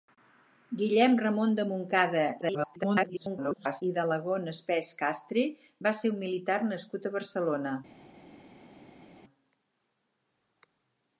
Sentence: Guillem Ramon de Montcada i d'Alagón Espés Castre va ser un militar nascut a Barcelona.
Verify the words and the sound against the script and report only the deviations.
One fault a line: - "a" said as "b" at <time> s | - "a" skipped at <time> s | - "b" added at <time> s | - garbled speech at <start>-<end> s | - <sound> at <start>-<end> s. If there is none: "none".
- garbled speech at 2.4-3.8 s